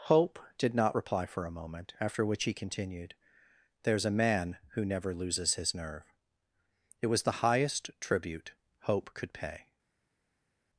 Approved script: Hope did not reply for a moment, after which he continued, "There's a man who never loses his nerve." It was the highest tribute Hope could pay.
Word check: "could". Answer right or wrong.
right